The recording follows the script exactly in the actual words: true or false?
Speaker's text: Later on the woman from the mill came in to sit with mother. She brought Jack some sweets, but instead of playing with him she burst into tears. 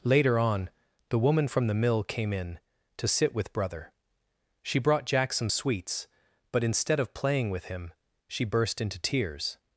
false